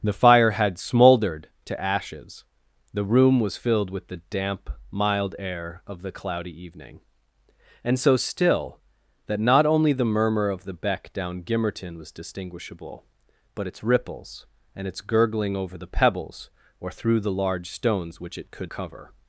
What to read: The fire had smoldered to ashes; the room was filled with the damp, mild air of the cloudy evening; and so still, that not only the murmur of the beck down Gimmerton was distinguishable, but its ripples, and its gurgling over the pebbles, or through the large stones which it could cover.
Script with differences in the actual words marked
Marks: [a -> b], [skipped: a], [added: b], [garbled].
The fire had smoldered to ashes; the room was filled with the damp, mild air of the cloudy evening; and so still, that not only the murmur of the beck down Gimmerton was distinguishable, but its ripples, and its gurgling over the pebbles, or through the large stones which it could cover.